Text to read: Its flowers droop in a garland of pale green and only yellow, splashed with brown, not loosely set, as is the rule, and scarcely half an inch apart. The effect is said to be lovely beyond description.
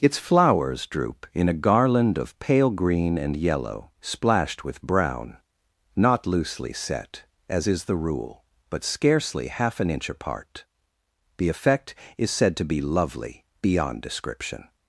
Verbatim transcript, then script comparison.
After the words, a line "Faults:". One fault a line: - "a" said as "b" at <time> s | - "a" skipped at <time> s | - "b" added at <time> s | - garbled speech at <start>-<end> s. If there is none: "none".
Its flowers droop in a garland of pale green and yellow, splashed with brown, not loosely set, as is the rule, but scarcely half an inch apart. The effect is said to be lovely beyond description.
Faults:
- "only" skipped at 3.4 s
- "and" said as "but" at 8.7 s